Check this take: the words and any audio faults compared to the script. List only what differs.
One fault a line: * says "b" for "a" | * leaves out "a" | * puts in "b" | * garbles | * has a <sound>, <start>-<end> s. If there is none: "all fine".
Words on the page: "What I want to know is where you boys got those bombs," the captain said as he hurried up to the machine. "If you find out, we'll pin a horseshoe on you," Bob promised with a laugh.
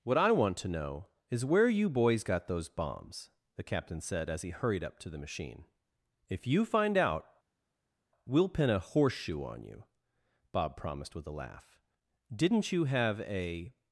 * puts in "Didn't you have a"